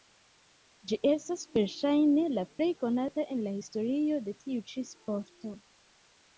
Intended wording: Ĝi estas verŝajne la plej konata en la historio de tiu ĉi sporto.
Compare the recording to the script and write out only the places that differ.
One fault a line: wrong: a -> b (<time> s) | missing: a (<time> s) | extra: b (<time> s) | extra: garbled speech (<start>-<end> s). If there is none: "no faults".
no faults